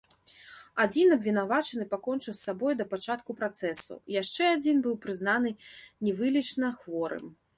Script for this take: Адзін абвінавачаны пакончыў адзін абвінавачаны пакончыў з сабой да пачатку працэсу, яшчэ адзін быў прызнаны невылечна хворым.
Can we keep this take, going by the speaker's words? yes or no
no